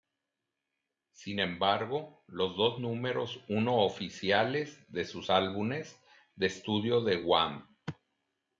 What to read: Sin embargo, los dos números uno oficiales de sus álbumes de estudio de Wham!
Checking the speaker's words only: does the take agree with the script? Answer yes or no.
yes